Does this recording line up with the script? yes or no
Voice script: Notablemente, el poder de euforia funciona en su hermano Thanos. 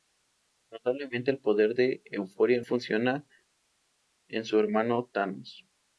yes